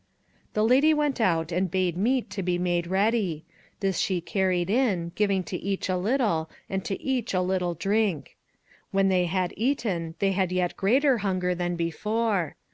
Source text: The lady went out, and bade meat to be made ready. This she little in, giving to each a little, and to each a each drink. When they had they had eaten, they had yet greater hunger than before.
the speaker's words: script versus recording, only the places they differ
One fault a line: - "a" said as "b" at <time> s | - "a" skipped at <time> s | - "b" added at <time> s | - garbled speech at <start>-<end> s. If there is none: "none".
- "little" said as "carried" at 4.2 s
- "each" said as "little" at 7.4 s
- "they had" skipped at 9.5 s